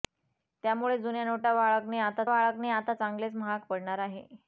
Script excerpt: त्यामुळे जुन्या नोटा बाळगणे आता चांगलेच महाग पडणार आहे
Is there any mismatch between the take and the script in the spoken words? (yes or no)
yes